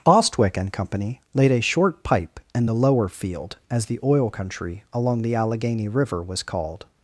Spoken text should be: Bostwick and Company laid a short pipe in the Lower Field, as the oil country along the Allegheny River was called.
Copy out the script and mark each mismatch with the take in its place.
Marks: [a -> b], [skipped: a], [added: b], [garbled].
Bostwick and Company laid a short pipe in the Lower Field, as the oil country along the Allegheny River was called.